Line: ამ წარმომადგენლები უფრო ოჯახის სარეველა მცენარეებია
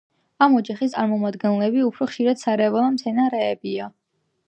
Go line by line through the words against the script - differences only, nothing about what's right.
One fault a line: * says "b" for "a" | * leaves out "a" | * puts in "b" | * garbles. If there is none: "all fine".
* puts in "ოჯახის"
* says "ხშირად" for "ოჯახის"